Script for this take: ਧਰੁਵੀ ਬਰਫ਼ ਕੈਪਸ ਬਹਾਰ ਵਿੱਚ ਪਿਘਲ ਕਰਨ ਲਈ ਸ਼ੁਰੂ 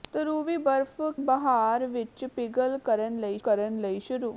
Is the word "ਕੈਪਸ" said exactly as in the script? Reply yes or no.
no